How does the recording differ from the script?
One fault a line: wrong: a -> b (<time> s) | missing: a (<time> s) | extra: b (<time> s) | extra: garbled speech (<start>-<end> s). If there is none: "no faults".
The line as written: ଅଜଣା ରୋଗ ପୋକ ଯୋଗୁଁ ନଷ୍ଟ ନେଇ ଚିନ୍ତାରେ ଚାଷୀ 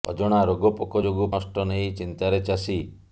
no faults